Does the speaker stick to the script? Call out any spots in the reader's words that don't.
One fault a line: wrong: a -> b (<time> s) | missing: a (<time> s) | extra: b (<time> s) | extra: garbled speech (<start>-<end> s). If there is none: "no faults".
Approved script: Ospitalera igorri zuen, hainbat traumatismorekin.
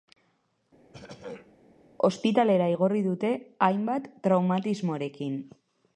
wrong: zuen -> dute (3.1 s)